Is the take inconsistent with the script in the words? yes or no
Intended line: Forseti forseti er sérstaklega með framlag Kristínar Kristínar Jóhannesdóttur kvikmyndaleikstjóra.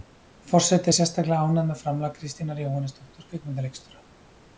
yes